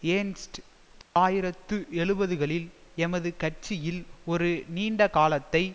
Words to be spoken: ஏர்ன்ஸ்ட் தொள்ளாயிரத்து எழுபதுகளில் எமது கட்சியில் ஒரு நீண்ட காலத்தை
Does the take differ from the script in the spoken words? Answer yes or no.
no